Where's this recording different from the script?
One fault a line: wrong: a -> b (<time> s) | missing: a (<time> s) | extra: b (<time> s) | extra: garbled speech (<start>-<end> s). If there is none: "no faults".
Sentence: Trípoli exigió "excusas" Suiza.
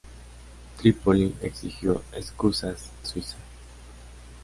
no faults